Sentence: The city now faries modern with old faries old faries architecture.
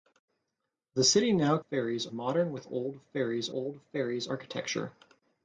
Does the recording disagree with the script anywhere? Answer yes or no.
no